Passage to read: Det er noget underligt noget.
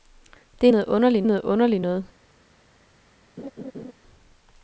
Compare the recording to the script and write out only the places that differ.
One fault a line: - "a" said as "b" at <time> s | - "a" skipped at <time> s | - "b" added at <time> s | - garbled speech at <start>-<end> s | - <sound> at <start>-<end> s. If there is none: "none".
- "underligt noget" added at 1.4 s
- laugh at 3.4-3.9 s